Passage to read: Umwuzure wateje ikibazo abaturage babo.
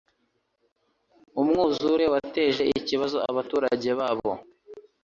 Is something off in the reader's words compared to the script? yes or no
no